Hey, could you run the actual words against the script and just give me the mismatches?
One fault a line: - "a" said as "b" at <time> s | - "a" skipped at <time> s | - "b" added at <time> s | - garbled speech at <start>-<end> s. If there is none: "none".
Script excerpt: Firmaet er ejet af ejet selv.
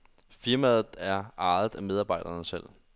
- "ejet" said as "medarbejderne" at 1.8 s